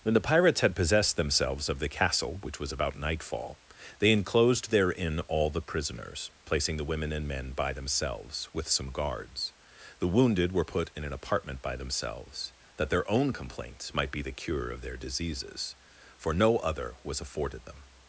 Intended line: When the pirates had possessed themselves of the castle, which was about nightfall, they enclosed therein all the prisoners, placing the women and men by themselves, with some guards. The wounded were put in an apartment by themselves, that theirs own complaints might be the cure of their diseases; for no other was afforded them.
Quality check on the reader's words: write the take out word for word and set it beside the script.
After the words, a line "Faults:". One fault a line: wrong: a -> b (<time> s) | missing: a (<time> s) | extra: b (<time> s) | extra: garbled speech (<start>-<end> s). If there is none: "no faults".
When the pirates had possessed themselves of the castle, which was about nightfall, they enclosed therein all the prisoners, placing the women and men by themselves, with some guards. The wounded were put in an apartment by themselves, that their own complaints might be the cure of their diseases; for no other was afforded them.
Faults:
wrong: theirs -> their (12.9 s)